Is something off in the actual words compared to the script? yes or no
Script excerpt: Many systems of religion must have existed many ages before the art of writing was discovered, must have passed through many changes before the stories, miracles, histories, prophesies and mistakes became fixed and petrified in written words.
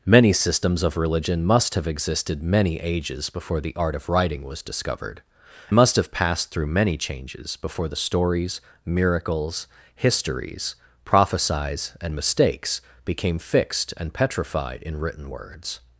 no